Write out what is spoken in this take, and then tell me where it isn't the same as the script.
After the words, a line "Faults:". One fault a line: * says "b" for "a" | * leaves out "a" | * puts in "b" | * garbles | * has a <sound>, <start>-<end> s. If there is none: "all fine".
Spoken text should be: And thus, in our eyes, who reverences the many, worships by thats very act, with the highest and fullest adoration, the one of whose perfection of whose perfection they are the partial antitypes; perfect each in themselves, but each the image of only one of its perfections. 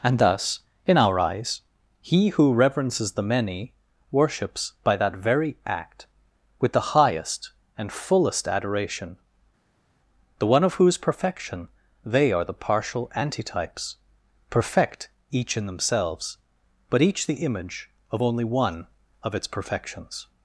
And thus, in our eyes, he who reverences the many, worships by that very act, with the highest and fullest adoration, the one of whose perfection they are the partial antitypes; perfect each in themselves, but each the image of only one of its perfections.
Faults:
* puts in "he"
* says "that" for "thats"
* leaves out "of whose perfection"